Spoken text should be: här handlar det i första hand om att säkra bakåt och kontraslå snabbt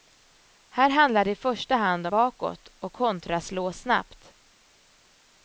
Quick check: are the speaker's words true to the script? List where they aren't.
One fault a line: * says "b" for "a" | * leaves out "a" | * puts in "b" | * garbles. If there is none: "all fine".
* leaves out "om att säkra"